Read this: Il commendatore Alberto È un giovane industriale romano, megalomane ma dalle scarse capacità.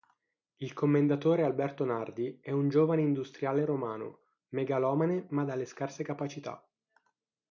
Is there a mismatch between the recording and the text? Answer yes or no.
yes